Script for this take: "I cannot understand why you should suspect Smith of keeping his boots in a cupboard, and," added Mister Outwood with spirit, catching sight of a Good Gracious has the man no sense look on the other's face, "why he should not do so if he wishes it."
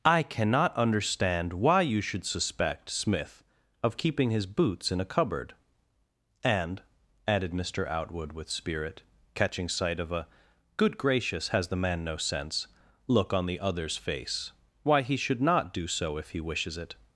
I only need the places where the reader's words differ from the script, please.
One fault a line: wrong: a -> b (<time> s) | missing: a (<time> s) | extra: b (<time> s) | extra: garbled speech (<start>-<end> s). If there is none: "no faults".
no faults